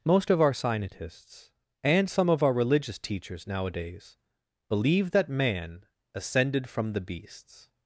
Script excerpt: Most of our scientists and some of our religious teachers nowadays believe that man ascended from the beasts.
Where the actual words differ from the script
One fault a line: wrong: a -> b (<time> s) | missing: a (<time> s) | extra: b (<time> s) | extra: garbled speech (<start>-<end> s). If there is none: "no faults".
no faults